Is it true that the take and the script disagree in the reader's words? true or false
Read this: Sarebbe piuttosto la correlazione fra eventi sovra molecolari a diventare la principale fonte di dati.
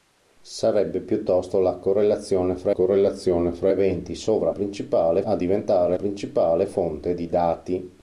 true